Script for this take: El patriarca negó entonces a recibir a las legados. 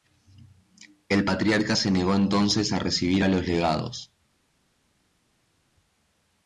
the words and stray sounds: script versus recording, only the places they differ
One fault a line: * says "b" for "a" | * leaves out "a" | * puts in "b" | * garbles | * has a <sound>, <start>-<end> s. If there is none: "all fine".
* puts in "se"
* says "los" for "las"